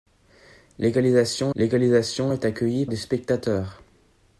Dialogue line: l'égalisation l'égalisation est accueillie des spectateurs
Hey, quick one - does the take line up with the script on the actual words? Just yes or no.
yes